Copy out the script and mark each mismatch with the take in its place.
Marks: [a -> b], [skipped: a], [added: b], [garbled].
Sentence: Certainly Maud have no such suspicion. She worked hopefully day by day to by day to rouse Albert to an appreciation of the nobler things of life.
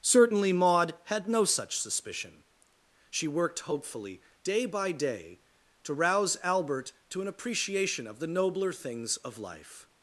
Certainly Maud [have -> had] no such suspicion. She worked hopefully day by day to [skipped: by day to] rouse Albert to an appreciation of the nobler things of life.